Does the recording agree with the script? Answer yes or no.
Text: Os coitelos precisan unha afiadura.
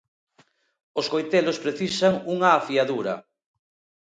yes